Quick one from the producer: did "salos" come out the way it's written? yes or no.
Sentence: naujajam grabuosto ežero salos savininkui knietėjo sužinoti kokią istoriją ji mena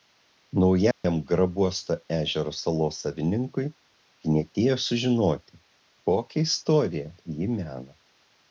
yes